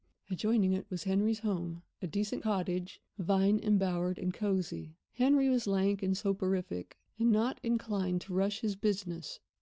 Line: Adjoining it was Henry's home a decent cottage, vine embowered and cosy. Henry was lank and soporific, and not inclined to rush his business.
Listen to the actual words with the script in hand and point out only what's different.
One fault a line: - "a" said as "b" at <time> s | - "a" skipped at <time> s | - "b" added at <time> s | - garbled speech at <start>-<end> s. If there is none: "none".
none